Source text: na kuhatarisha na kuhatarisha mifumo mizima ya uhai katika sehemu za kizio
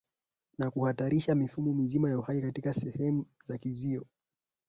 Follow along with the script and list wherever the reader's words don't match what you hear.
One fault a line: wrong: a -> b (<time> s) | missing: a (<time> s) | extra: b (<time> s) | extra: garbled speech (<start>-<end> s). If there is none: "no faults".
missing: na kuhatarisha (1.4 s)